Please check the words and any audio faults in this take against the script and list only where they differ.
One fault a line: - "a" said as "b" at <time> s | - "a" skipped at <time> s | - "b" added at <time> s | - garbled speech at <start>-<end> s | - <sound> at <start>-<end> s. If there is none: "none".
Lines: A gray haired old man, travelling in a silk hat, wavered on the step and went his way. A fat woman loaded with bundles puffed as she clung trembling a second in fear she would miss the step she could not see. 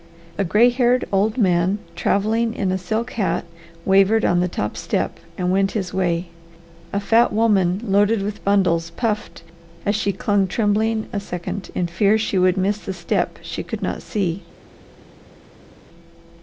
- "top" added at 4.5 s